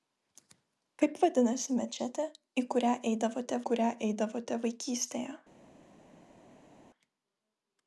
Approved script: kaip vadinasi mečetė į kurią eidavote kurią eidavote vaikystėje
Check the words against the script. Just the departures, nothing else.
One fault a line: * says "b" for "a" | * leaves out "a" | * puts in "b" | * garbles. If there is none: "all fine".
all fine